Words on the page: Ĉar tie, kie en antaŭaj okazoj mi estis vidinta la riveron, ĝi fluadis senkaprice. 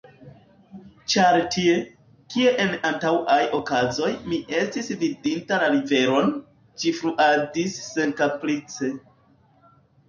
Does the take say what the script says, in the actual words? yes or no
yes